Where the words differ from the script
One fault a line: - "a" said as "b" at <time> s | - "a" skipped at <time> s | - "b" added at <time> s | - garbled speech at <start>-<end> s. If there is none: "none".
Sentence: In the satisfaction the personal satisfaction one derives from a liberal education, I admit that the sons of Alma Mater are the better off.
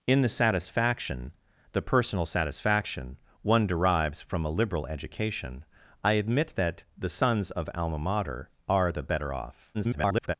- garbled speech at 9.7-10.3 s